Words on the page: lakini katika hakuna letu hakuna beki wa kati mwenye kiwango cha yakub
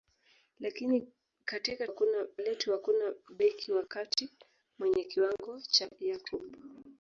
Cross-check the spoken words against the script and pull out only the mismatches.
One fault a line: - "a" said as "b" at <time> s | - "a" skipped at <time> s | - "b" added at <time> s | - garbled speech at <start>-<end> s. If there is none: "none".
none